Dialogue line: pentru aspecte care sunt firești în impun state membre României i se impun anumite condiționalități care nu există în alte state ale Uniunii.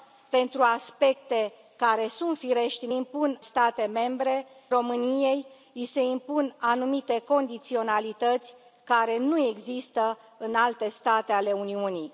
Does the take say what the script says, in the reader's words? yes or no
yes